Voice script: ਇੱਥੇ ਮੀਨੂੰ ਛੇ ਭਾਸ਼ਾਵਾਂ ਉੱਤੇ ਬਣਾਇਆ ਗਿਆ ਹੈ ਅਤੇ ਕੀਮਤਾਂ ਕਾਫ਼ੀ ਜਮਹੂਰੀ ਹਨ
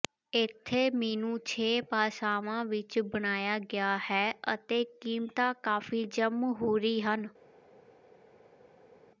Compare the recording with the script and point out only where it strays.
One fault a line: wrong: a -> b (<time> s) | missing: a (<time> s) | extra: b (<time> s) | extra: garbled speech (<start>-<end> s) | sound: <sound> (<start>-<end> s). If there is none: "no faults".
wrong: ਉੱਤੇ -> ਵਿੱਚ (2.6 s)